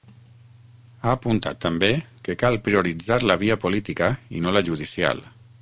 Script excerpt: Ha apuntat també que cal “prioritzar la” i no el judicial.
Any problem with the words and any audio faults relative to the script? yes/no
yes